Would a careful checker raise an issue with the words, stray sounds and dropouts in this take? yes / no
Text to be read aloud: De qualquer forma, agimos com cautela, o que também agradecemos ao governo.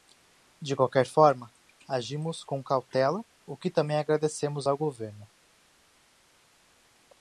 no